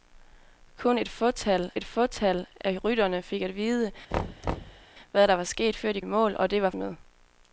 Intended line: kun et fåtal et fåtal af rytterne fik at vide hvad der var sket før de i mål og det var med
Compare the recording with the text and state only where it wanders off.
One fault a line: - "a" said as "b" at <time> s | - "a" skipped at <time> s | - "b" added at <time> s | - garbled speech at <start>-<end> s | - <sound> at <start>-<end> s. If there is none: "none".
- thud at 4.1-4.9 s